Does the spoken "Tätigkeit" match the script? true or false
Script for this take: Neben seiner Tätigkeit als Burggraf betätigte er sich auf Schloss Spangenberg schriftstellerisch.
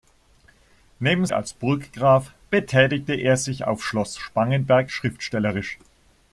false